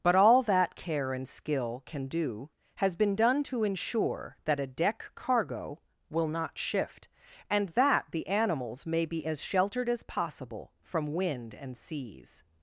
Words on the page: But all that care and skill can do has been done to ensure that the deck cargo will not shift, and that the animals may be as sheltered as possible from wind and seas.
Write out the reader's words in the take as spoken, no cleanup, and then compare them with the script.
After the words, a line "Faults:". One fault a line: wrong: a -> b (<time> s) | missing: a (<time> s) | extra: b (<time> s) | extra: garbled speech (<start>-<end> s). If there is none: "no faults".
But all that care and skill can do has been done to ensure that a deck cargo will not shift, and that the animals may be as sheltered as possible from wind and seas.
Faults:
wrong: the -> a (4.6 s)